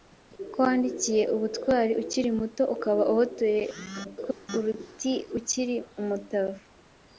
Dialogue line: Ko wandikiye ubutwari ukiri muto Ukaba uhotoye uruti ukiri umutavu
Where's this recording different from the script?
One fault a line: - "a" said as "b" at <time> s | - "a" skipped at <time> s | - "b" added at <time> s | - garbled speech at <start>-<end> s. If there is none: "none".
- garbled speech at 4.0-4.5 s